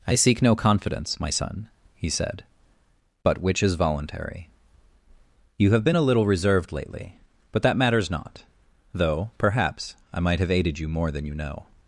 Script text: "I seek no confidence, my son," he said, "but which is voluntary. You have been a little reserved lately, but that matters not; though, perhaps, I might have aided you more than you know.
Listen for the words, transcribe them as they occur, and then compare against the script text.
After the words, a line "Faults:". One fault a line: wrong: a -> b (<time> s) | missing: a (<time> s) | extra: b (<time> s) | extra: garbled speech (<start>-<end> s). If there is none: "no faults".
"I seek no confidence, my son," he said, "but which is voluntary. You have been a little reserved lately, but that matters not; though, perhaps, I might have aided you more than you know.
Faults:
no faults